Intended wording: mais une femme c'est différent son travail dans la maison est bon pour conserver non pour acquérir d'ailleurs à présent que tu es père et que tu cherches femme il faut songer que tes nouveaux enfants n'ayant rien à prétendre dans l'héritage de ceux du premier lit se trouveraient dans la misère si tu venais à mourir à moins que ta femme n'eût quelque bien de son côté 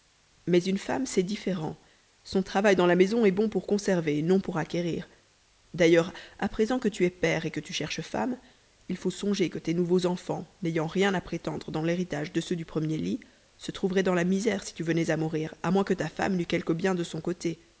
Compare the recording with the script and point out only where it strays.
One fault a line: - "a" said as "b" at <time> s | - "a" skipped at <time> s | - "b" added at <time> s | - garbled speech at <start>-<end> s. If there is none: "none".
none